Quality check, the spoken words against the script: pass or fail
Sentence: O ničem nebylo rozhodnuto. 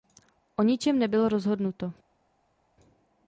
pass